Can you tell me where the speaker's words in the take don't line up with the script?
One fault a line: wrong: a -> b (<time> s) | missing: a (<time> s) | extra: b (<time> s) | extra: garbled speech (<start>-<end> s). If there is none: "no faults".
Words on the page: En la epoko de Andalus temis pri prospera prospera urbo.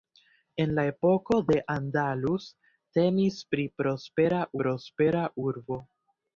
no faults